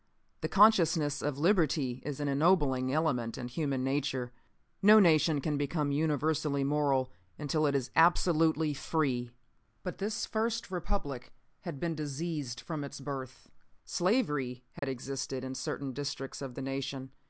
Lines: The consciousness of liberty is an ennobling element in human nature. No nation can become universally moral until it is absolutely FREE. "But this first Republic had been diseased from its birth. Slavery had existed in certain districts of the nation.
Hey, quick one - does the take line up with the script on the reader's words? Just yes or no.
yes